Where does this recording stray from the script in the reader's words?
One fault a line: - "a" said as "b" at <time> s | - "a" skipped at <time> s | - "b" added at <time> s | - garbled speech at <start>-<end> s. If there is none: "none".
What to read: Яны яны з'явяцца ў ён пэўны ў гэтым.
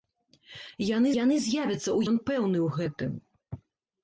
none